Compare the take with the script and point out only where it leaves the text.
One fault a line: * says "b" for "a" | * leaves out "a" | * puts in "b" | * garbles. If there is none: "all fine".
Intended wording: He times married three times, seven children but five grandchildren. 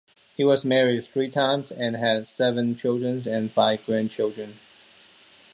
* says "was" for "times"
* puts in "and had"
* says "and" for "but"